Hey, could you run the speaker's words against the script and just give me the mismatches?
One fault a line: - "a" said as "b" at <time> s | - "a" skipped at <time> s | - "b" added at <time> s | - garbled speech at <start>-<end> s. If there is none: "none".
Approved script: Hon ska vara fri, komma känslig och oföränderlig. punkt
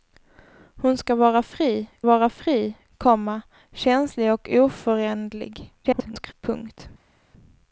- "vara fri" added at 2.0 s
- garbled speech at 5.8-6.3 s